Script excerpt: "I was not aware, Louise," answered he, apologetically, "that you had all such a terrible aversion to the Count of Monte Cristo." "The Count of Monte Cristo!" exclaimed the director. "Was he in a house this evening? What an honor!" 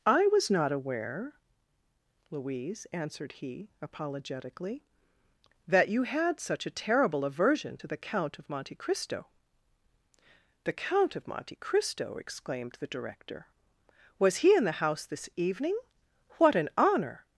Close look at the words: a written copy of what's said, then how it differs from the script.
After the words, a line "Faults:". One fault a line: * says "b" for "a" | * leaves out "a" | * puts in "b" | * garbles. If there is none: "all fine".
"I was not aware, Louise," answered he, apologetically, "that you had such a terrible aversion to the Count of Monte Cristo." "The Count of Monte Cristo!" exclaimed the director. "Was he in the house this evening? What an honor!"
Faults:
* leaves out "all"
* says "the" for "a"